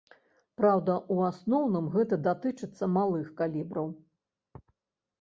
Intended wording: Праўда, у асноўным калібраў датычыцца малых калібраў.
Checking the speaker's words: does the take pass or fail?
fail